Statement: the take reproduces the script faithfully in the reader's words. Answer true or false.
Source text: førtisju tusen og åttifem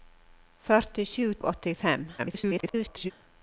false